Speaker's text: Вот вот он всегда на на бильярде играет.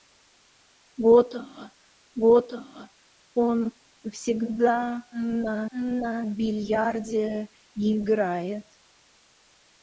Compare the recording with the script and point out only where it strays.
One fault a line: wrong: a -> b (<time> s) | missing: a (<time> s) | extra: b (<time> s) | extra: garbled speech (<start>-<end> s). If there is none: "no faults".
no faults